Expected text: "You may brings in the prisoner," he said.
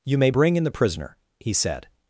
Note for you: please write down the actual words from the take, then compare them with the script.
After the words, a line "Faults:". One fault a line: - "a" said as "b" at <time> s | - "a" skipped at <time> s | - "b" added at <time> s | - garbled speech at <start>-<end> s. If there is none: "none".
"You may bring in the prisoner," he said.
Faults:
- "brings" said as "bring" at 0.3 s